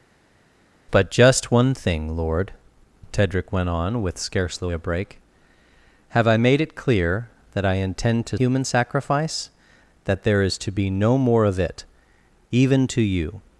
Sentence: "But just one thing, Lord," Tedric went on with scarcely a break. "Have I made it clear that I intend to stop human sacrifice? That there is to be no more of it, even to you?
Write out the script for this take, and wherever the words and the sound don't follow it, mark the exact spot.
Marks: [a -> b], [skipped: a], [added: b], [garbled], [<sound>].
"But just one thing, Lord," Tedric went on with scarcely a break. "Have I made it clear that I intend to [skipped: stop] human sacrifice? That there is to be no more of it, even to you?